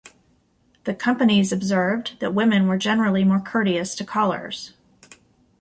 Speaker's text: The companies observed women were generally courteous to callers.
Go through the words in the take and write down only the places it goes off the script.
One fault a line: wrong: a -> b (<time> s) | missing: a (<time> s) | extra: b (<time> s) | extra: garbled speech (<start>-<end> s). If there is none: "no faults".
extra: that (2.2 s)
extra: more (3.2 s)